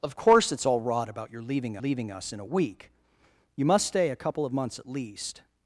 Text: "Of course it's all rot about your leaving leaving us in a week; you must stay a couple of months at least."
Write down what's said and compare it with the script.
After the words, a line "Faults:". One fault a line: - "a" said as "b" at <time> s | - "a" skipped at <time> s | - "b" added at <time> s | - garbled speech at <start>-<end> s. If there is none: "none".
"Of course it's all rot about your leaving leaving us in a week; you must stay a couple of months at least."
Faults:
none